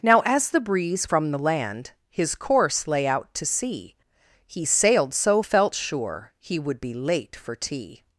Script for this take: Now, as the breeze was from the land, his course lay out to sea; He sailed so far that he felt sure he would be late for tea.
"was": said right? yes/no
no